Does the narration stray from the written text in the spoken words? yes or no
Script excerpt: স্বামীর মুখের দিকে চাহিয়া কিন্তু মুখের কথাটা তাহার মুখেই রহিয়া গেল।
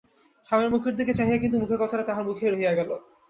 no